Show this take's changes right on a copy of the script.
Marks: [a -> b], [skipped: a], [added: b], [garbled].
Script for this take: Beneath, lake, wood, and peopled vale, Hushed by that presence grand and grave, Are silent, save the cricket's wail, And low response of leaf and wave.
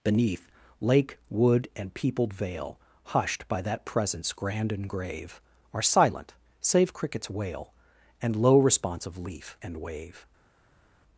Beneath, lake, wood, and peopled vale, Hushed by that presence grand and grave, Are silent, save [skipped: the] cricket's wail, And low response of leaf and wave.